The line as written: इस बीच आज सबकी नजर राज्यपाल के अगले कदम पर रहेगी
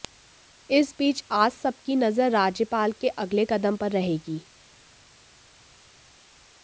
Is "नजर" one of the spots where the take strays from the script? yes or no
no